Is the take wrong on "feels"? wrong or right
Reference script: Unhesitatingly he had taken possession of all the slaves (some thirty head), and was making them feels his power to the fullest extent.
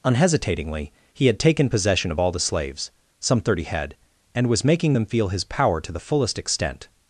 wrong